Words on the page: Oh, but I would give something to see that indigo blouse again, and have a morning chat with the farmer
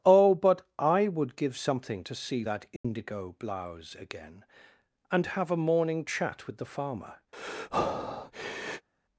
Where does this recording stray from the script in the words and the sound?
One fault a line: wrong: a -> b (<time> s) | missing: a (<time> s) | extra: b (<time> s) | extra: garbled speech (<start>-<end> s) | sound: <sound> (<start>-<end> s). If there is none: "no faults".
sound: dropout (2.8-2.8 s)
sound: breath (7.3-8.9 s)